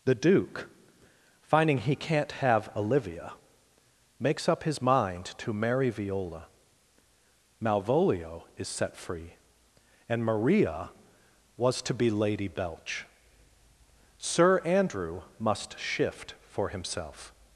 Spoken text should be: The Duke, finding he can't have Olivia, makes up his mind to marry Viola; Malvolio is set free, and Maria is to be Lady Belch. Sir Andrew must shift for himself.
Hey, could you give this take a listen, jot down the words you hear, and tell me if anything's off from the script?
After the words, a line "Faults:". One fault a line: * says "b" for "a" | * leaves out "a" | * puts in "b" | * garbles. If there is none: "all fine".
The Duke, finding he can't have Olivia, makes up his mind to marry Viola; Malvolio is set free, and Maria was to be Lady Belch. Sir Andrew must shift for himself.
Faults:
* says "was" for "is"